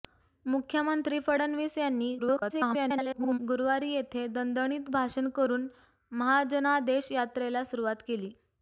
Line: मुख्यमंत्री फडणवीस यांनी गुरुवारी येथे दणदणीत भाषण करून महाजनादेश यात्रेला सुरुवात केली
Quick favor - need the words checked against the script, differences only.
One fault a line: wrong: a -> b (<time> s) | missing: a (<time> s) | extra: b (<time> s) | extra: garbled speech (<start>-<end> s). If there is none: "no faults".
extra: garbled speech (2.2-3.4 s)